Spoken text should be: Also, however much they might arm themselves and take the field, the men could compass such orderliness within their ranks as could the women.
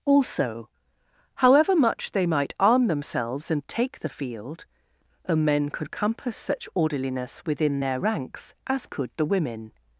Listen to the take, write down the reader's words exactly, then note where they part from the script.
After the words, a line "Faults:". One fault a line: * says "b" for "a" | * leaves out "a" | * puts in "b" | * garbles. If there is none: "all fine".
Also, however much they might arm themselves and take the field, the men could compass such orderliness within their ranks as could the women.
Faults:
all fine